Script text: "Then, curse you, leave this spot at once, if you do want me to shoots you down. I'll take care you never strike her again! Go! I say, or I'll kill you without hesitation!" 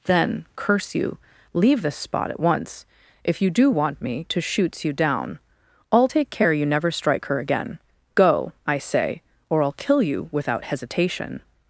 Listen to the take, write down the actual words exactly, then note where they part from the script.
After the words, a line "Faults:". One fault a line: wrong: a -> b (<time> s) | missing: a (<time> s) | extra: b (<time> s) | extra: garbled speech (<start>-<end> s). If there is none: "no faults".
"Then, curse you, leave this spot at once, if you do want me to shoots you down. I'll take care you never strike her again! Go! I say, or I'll kill you without hesitation!"
Faults:
no faults